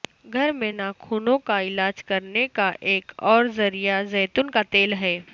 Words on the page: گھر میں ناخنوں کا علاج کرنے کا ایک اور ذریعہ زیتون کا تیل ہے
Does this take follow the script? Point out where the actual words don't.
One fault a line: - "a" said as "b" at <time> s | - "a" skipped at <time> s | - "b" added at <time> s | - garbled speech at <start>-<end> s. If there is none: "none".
none